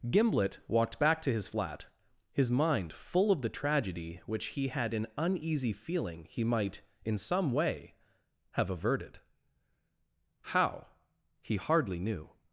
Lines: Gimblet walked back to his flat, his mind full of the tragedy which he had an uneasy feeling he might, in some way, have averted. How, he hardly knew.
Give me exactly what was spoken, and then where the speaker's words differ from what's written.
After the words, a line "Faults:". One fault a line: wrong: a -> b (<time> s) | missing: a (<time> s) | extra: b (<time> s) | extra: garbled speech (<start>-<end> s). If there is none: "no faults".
Gimblet walked back to his flat, his mind full of the tragedy which he had an uneasy feeling he might, in some way, have averted. How, he hardly knew.
Faults:
no faults